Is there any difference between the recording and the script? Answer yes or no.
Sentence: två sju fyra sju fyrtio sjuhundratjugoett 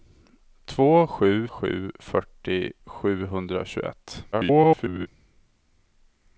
yes